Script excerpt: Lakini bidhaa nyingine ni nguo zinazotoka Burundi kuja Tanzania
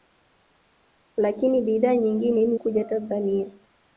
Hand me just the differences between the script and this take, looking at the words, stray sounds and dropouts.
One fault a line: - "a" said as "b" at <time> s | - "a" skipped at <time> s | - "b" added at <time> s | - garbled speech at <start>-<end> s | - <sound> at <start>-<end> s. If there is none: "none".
- "nguo zinazotoka Burundi" skipped at 2.5 s